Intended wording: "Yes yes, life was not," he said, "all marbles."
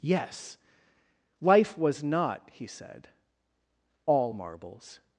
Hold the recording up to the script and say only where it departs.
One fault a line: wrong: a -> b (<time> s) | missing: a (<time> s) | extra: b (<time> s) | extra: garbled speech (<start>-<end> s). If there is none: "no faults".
missing: yes (0.6 s)